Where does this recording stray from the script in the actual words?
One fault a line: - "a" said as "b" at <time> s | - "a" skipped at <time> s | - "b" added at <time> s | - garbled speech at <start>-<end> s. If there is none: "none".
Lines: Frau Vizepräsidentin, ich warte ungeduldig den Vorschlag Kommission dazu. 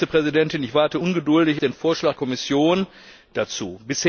none